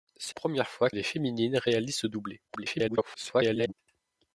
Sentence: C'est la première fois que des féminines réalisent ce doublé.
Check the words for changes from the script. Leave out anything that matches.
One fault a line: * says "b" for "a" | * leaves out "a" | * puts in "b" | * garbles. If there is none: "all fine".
* leaves out "la"
* leaves out "que"
* garbles